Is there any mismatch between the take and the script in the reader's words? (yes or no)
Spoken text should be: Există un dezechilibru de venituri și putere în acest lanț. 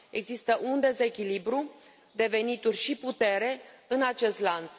no